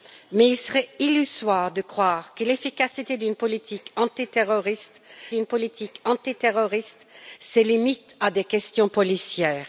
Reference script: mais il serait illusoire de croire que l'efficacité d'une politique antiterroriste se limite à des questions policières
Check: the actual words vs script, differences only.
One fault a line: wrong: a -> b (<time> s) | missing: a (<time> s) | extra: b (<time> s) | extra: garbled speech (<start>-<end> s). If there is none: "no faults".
extra: d'une politique antiterroriste (5.3 s)